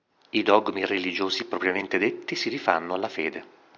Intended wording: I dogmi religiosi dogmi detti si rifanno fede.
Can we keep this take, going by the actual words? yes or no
no